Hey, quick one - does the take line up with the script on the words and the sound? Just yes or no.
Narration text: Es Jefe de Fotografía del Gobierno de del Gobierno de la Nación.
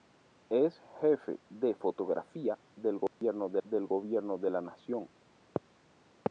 no